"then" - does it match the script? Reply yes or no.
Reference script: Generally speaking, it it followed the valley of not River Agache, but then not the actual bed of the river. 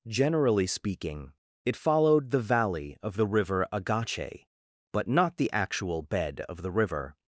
no